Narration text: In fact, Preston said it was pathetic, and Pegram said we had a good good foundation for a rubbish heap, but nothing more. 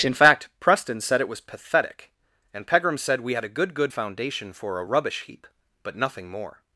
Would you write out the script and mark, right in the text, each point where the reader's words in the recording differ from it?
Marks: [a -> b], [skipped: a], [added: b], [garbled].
In fact, Preston said it was pathetic, and Pegram said we had a good good foundation for a rubbish heap, but nothing more.